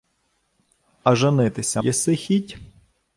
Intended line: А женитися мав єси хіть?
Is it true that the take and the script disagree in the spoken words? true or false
true